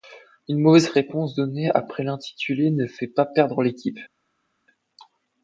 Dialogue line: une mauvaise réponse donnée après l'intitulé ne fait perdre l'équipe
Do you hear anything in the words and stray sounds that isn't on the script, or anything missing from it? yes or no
yes